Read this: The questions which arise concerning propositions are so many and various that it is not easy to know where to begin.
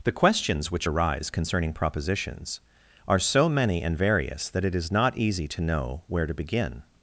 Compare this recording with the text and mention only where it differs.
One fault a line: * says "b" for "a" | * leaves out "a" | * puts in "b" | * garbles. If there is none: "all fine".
all fine